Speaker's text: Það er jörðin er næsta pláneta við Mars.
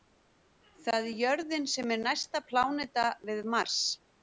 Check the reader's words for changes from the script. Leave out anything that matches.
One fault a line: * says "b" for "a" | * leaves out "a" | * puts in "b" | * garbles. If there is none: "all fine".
* puts in "sem"